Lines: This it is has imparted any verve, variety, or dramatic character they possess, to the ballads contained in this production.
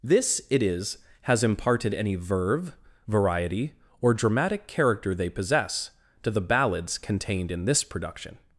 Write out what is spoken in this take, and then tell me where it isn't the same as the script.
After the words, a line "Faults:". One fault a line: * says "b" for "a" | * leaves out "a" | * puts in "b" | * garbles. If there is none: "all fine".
This it is has imparted any verve, variety, or dramatic character they possess, to the ballads contained in this production.
Faults:
all fine